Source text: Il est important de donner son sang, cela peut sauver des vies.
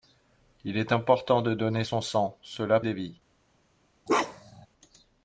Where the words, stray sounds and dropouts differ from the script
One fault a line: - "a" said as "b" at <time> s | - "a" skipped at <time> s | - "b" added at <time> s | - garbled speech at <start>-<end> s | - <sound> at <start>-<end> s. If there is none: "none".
- "peut sauver" skipped at 2.8 s
- bark at 4.1-4.7 s